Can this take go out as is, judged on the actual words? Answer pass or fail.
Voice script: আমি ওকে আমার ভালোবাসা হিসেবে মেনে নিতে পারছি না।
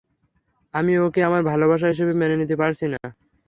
pass